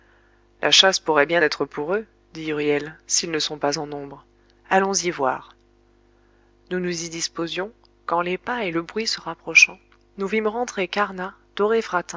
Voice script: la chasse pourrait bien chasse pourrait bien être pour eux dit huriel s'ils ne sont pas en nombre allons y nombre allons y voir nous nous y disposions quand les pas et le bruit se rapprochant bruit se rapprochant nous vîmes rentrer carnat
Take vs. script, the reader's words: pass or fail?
fail